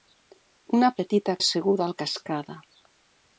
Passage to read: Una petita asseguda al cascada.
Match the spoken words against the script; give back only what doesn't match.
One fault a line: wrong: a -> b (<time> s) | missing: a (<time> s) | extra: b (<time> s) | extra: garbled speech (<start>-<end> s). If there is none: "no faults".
no faults